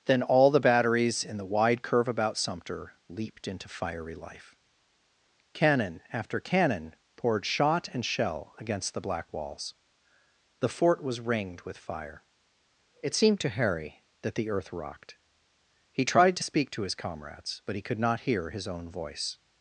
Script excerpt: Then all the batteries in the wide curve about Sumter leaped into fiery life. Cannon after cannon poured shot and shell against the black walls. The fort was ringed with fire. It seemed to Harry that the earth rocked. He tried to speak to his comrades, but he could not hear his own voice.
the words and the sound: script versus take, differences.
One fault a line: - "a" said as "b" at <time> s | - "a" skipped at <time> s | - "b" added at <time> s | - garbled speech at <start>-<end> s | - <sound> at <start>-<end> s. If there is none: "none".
none